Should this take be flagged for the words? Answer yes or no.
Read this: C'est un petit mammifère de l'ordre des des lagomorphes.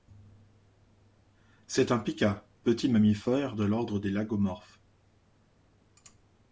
yes